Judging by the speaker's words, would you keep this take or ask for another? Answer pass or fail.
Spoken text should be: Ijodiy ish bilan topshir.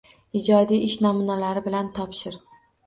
fail